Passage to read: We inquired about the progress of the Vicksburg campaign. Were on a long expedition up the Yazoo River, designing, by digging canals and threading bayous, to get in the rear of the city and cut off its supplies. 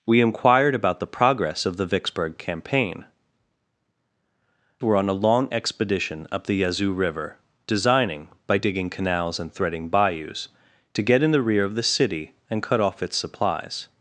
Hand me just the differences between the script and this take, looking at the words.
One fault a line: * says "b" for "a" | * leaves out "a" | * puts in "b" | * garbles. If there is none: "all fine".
all fine